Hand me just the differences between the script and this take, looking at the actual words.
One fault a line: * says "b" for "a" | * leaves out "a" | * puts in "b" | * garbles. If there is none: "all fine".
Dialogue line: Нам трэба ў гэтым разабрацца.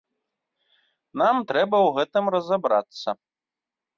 all fine